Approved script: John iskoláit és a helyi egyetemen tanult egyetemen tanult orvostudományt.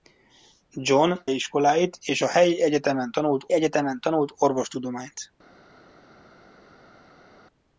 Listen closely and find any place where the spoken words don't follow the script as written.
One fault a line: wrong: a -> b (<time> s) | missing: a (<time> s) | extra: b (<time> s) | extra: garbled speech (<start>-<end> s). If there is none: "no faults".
no faults